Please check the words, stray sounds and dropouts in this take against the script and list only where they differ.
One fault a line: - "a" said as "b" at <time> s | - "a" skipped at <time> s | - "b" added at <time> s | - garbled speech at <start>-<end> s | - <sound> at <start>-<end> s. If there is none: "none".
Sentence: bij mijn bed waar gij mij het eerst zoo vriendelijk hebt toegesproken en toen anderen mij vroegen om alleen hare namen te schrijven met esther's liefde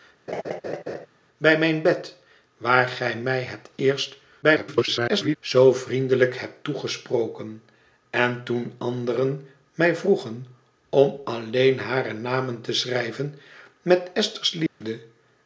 - laugh at 0.3-1.1 s
- garbled speech at 4.4-5.4 s
- dropout at 14.7-14.8 s